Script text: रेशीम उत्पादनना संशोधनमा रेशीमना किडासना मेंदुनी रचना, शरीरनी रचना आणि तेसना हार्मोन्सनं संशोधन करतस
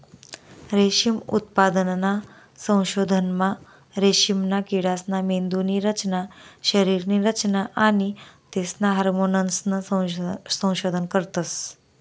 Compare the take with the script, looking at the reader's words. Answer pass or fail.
pass